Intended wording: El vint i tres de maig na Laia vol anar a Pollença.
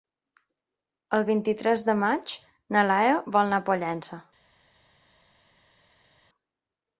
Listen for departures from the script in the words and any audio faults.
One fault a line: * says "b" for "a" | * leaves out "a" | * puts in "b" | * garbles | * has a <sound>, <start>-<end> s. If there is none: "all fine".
all fine